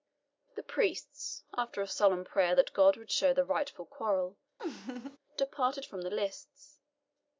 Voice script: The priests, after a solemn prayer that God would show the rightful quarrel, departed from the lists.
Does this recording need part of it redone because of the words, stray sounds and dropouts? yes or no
yes